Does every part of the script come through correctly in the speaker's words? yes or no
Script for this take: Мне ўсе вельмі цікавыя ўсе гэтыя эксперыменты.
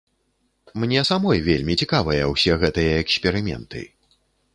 no